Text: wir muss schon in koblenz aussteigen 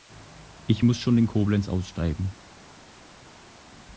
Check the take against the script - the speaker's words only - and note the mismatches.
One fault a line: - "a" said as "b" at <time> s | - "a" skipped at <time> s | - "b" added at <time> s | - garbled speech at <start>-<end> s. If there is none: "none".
- "wir" said as "ich" at 0.7 s